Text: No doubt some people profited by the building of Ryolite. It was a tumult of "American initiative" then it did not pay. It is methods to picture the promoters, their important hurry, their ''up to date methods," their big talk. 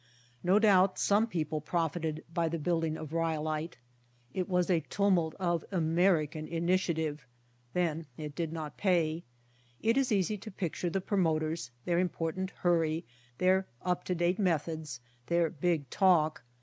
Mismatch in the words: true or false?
true